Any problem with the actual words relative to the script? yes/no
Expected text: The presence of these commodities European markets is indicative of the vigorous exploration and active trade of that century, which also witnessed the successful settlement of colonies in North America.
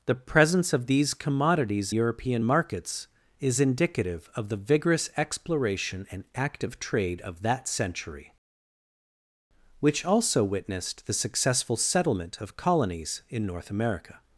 no